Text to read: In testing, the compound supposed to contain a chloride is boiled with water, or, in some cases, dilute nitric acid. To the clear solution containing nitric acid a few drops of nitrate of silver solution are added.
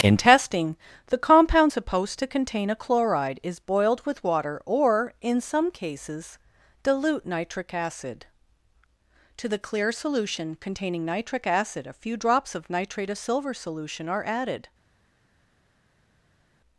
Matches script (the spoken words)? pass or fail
pass